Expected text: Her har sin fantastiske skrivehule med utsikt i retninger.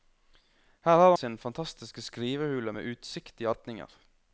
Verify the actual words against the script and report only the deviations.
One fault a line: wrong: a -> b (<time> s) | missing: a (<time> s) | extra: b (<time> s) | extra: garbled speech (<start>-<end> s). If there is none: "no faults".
no faults